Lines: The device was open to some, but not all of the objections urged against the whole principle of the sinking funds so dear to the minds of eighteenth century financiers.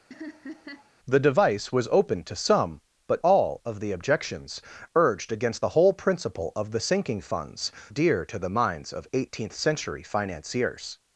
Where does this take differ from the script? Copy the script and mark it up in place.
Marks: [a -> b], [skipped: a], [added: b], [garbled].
The device was open to some, but [skipped: not] all of the objections urged against the whole principle of the sinking funds [skipped: so] dear to the minds of eighteenth century financiers.